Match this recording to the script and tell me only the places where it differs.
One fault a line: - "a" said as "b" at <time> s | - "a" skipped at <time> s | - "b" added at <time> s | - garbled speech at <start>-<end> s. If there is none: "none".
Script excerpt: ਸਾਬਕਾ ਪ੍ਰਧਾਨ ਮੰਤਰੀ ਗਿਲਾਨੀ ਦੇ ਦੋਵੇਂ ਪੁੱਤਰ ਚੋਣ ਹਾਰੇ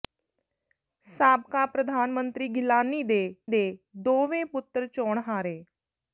- "ਦੇ" added at 3.5 s